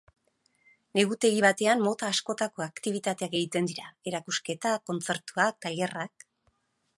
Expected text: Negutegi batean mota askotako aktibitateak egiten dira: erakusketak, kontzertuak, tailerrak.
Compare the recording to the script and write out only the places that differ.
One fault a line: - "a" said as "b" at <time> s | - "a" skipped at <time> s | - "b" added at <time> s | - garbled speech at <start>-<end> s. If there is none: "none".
none